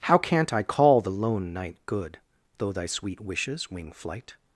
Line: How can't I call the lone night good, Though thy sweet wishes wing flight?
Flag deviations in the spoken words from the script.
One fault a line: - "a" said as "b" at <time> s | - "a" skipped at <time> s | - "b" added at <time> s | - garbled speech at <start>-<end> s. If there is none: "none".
none